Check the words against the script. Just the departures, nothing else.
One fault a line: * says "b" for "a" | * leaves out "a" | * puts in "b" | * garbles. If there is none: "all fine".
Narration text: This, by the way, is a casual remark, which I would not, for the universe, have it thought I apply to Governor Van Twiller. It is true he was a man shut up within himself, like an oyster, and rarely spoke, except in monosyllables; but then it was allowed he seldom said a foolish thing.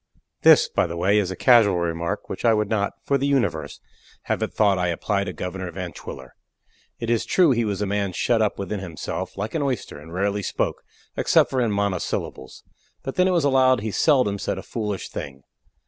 all fine